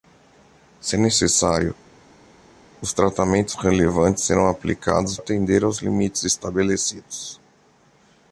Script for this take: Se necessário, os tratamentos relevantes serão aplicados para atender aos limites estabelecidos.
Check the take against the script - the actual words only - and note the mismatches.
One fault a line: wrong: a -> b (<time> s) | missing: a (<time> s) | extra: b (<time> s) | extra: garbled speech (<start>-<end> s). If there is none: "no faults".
missing: para (5.2 s)